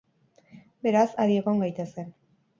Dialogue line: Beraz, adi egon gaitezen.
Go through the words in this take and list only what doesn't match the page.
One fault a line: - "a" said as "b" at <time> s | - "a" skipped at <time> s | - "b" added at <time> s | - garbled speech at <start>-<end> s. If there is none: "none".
none